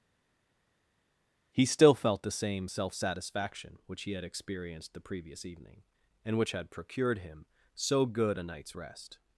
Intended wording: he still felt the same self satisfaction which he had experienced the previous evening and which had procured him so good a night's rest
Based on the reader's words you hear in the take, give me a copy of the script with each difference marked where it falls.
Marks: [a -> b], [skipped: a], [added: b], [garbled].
he still felt the same self satisfaction which he had experienced the previous evening and which had procured him so good a night's rest